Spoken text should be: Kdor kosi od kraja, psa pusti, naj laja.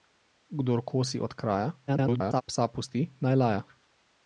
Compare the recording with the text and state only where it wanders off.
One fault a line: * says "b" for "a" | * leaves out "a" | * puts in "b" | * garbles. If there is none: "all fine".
* garbles